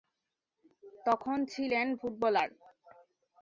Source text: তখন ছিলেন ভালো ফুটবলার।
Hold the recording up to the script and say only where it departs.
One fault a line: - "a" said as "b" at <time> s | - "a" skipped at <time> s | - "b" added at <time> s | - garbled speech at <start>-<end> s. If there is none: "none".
- "ভালো" skipped at 1.9 s